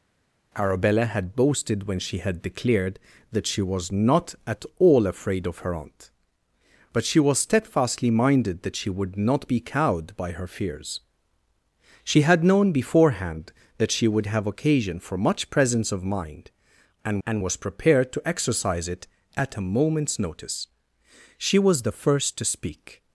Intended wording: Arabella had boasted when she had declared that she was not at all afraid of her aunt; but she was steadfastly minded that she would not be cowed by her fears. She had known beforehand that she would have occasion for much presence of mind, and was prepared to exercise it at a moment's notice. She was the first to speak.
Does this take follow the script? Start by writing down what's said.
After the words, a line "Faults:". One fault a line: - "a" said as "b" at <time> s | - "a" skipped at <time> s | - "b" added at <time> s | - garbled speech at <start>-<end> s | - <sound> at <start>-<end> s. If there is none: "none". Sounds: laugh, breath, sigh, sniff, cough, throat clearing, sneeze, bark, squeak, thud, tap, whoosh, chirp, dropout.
Arabella had boasted when she had declared that she was not at all afraid of her aunt; but she was steadfastly minded that she would not be cowed by her fears. She had known beforehand that she would have occasion for much presence of mind, and and was prepared to exercise it at a moment's notice. She was the first to speak.
Faults:
- "and" added at 17.3 s